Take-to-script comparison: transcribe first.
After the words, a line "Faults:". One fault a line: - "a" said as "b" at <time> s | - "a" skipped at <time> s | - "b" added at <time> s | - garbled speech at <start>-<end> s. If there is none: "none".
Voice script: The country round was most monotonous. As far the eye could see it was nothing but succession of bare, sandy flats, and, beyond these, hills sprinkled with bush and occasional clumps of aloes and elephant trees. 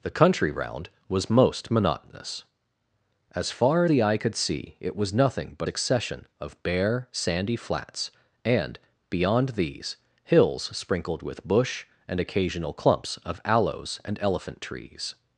The country round was most monotonous. As far the eye could see it was nothing but succession of bare, sandy flats, and, beyond these, hills sprinkled with bush and occasional clumps of aloes and elephant trees.
Faults:
none